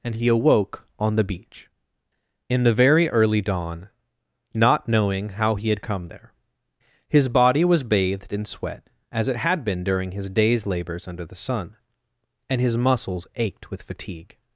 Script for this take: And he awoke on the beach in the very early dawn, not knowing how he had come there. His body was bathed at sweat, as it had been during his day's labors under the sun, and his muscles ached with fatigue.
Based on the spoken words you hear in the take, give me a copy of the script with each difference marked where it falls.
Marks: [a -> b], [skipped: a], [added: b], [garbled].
And he awoke on the beach in the very early dawn, not knowing how he had come there. His body was bathed [at -> in] sweat, as it had been during his day's labors under the sun, and his muscles ached with fatigue.